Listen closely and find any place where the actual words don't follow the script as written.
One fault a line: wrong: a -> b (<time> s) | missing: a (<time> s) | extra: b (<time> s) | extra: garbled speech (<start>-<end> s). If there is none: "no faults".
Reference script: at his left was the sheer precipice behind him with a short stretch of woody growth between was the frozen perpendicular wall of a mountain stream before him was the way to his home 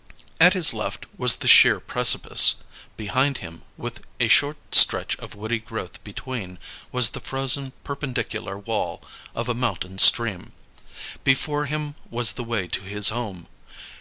no faults